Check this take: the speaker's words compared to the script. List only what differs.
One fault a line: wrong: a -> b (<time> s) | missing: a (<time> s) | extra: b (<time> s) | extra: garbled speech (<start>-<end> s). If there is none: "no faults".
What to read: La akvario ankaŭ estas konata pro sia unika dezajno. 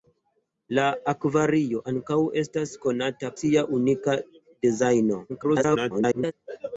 missing: pro (3.3 s)
extra: garbled speech (5.3-6.3 s)